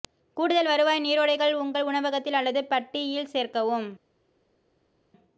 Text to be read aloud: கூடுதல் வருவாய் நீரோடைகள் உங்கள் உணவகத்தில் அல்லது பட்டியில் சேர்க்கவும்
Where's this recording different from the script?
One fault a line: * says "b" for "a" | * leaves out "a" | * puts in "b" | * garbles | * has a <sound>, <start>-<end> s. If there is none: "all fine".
all fine